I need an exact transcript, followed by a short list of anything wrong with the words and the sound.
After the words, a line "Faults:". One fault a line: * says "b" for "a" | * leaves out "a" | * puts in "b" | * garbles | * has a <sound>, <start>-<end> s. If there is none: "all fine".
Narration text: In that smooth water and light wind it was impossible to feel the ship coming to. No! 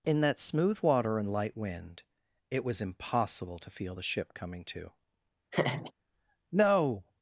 In that smooth water and light wind it was impossible to feel the ship coming to. No!
Faults:
* has a laugh, 5.5-5.9 s